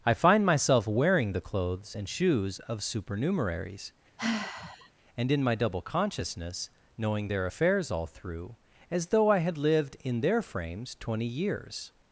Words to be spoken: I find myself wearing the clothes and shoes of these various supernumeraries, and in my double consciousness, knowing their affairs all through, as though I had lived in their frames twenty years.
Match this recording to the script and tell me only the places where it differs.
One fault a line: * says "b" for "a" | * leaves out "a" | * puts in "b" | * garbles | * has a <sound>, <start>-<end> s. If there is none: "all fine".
* leaves out "these various"
* has a sigh, 4.2-4.9 s